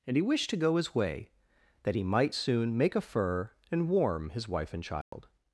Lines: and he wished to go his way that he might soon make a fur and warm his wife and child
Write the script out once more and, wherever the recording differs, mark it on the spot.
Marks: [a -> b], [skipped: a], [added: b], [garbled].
and he wished to go his way that he might soon make a fur and warm his wife and child